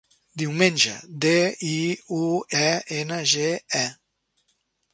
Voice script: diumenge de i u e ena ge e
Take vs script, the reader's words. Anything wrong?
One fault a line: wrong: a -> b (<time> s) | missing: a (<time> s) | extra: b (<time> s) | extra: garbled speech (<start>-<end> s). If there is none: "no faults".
no faults